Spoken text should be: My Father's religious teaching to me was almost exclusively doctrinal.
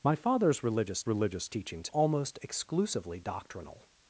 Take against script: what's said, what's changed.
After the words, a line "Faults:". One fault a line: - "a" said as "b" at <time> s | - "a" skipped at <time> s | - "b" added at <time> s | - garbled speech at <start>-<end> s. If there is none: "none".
My Father's religious religious teaching to almost exclusively doctrinal.
Faults:
- "religious" added at 1.1 s
- "me was" skipped at 1.9 s